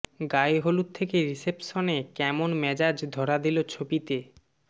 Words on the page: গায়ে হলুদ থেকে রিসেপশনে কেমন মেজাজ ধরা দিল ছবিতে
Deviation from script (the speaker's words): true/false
false